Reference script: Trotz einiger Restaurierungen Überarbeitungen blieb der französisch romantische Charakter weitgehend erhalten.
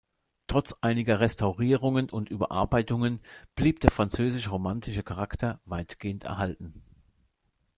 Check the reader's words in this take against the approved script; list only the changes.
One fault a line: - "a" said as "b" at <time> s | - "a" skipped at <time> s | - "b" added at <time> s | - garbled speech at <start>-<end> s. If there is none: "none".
- "und" added at 2.1 s